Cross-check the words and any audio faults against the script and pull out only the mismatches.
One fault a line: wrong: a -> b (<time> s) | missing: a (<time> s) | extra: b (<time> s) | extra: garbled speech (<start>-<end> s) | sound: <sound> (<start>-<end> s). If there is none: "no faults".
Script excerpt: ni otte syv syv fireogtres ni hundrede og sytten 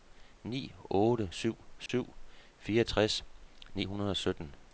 sound: dropout (1.9-1.9 s)